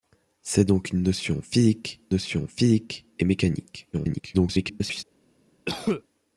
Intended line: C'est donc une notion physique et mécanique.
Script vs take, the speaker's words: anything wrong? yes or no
yes